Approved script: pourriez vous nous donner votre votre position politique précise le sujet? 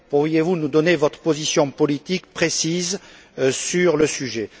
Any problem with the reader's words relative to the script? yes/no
yes